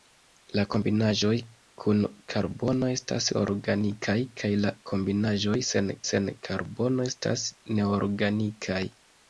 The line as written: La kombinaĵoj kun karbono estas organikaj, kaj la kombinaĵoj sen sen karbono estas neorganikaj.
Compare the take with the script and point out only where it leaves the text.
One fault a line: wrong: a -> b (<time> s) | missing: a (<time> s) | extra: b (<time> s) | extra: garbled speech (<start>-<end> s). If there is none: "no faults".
no faults